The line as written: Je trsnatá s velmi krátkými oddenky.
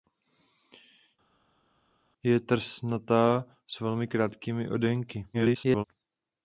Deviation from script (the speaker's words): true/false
true